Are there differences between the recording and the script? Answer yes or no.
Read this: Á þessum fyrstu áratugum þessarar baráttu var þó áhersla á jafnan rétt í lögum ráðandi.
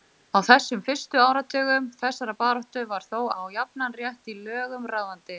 yes